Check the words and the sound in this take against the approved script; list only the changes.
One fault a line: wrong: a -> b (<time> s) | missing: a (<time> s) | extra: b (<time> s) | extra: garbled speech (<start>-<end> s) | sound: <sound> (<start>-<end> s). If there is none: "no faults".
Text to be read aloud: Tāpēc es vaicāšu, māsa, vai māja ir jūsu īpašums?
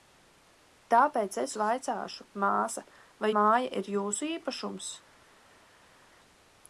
no faults